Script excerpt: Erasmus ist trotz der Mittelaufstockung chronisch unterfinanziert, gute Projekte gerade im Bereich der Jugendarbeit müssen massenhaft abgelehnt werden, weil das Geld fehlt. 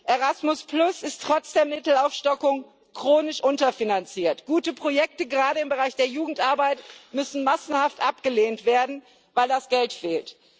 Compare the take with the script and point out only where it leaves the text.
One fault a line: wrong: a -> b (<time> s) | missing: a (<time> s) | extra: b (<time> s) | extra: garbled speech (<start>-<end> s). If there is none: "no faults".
no faults